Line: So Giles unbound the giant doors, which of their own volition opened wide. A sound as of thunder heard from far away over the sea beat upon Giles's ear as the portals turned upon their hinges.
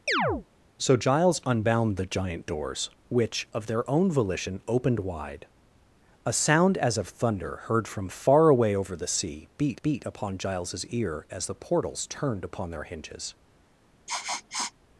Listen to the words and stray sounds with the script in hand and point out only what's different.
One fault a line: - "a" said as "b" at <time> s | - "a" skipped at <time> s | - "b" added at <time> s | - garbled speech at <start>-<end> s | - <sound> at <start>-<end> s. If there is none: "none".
- chirp at 0.1-0.5 s
- "beat" added at 9.8 s
- sniff at 14.1-14.7 s